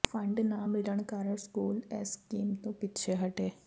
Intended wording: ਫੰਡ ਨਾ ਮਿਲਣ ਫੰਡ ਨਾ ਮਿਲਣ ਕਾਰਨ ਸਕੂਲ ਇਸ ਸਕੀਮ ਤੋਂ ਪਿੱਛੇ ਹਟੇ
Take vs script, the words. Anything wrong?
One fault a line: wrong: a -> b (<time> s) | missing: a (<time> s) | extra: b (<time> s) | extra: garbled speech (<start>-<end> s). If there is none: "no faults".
missing: ਫੰਡ ਨਾ ਮਿਲਣ (1.0 s)